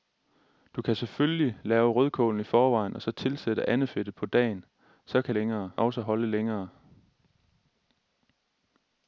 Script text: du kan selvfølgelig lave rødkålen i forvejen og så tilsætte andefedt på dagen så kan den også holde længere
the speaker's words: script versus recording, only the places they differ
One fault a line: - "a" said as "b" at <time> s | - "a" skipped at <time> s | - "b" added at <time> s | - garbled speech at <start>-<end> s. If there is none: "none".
- "den" said as "længere" at 5.3 s